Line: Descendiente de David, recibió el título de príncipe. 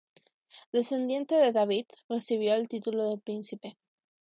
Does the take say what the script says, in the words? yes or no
yes